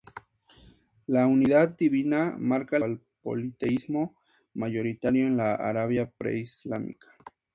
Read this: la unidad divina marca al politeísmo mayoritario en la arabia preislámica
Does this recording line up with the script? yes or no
yes